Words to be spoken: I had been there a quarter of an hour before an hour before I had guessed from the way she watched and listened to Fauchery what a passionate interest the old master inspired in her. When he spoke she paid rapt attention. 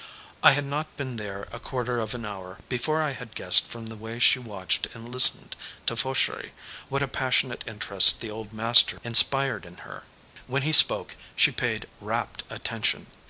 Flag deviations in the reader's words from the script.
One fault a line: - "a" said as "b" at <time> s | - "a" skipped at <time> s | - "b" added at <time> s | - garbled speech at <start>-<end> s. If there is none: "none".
- "not" added at 0.6 s
- "an hour before" skipped at 3.0 s